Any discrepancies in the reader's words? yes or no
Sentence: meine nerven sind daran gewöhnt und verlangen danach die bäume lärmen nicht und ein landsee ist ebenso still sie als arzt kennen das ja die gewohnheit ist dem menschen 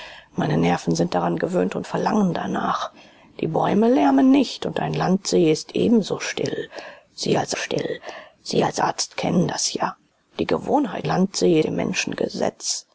yes